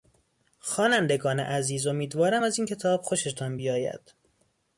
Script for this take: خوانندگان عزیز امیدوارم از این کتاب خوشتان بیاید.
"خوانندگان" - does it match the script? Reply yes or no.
yes